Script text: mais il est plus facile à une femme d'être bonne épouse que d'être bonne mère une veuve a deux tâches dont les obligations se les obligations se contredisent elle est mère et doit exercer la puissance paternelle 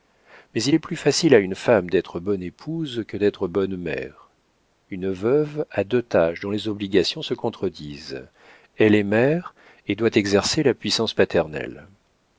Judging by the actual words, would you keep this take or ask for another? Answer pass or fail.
fail